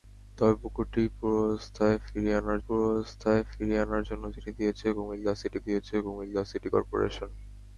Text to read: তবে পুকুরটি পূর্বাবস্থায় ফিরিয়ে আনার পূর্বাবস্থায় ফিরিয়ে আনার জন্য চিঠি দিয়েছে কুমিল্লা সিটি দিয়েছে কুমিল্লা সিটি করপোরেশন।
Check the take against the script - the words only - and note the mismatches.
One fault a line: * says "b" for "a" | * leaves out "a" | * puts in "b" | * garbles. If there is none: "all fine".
all fine